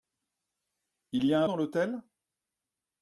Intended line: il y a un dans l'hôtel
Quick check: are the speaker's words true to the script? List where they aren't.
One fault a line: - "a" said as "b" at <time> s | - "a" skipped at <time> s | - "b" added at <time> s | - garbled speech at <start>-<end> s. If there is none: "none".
none